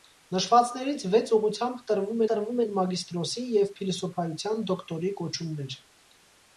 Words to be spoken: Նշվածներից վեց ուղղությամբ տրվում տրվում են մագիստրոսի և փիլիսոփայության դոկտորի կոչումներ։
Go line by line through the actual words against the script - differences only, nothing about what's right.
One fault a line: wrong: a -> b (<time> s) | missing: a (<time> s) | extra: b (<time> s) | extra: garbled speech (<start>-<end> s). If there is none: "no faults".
no faults